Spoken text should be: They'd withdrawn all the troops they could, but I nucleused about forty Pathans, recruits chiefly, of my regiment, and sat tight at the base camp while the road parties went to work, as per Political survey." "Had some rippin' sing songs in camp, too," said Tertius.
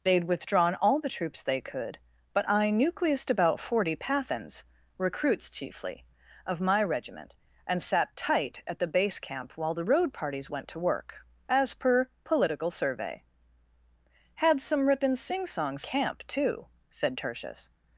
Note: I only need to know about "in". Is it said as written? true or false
false